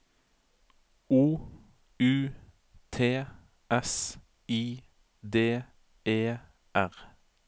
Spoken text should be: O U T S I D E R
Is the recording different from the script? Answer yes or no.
no